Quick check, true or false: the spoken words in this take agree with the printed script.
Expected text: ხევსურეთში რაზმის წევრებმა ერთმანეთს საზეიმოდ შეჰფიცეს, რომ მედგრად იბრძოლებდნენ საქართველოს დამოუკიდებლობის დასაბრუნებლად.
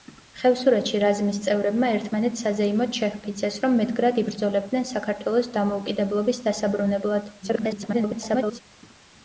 false